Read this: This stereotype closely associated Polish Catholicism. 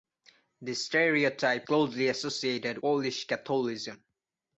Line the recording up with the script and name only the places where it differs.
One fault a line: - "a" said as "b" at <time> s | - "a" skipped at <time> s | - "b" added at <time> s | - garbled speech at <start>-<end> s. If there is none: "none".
none